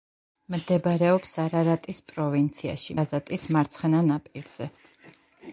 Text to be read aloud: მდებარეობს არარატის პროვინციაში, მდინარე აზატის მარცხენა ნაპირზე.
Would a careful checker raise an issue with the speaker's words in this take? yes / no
yes